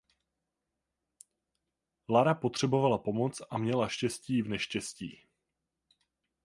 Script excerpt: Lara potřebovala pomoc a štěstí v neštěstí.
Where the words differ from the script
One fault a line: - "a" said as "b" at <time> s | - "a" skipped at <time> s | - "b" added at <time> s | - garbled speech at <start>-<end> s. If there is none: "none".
- "měla" added at 3.6 s